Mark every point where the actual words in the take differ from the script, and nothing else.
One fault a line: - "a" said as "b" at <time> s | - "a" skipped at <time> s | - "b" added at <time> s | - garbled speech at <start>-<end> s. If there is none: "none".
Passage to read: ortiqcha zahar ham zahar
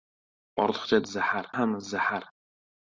none